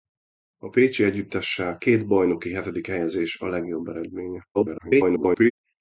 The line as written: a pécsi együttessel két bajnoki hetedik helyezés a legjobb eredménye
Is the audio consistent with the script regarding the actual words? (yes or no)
no